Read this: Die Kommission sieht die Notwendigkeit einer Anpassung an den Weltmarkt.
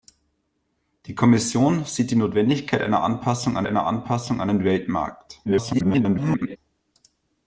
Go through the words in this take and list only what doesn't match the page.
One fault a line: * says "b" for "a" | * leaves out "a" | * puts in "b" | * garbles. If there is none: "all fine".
* puts in "einer Anpassung an"
* garbles